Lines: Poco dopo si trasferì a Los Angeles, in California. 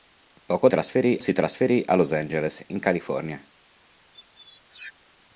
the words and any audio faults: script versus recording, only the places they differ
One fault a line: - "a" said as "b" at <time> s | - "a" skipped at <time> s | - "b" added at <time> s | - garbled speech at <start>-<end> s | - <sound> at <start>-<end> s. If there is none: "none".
- "dopo" said as "trasferì" at 0.7 s
- squeak at 4.1-4.9 s